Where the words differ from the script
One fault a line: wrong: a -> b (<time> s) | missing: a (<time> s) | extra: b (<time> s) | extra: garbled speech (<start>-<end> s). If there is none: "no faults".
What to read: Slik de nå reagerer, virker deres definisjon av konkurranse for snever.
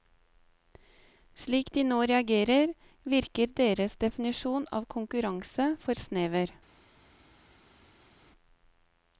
no faults